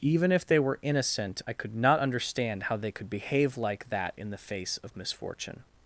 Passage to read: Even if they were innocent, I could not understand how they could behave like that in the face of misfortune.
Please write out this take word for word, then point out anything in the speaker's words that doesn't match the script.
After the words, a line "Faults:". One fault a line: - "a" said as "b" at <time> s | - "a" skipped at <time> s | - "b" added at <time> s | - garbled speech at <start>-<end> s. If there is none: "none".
Even if they were innocent, I could not understand how they could behave like that in the face of misfortune.
Faults:
none